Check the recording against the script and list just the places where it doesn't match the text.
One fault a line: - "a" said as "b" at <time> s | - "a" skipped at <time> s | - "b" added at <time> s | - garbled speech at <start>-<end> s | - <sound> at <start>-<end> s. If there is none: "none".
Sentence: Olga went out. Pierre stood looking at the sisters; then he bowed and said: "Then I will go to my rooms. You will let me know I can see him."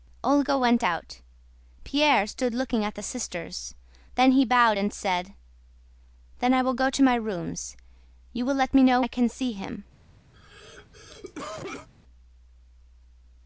- cough at 10.3-11.9 s